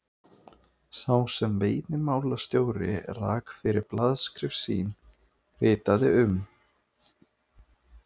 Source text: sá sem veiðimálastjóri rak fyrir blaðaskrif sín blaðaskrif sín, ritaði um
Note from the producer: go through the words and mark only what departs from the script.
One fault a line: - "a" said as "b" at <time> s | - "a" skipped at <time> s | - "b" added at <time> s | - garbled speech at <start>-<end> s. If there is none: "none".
- "blaðaskrif sín" skipped at 4.9 s